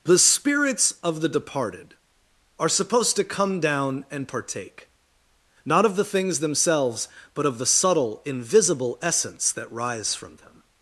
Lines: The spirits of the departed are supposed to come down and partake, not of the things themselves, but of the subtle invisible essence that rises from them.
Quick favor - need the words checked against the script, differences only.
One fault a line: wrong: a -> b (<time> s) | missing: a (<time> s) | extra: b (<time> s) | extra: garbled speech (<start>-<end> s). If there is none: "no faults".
wrong: rises -> rise (9.7 s)